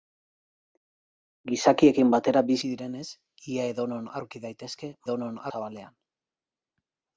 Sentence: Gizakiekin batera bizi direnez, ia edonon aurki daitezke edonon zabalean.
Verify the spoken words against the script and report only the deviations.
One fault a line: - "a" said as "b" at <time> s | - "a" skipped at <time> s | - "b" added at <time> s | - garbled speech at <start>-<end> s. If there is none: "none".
none